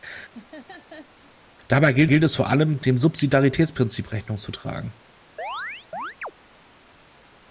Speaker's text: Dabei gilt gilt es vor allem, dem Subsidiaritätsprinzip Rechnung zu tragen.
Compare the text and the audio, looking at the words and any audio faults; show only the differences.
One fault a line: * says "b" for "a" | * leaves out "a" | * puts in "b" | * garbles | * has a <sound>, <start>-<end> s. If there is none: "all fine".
* has a laugh, 0.3-1.4 s
* has a chirp, 5.4-6.3 s